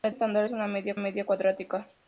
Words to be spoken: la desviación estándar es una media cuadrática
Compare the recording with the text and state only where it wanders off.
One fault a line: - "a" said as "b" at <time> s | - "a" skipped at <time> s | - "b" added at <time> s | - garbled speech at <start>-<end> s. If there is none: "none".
- "desviación" skipped at 0.1 s
- "media" added at 1.0 s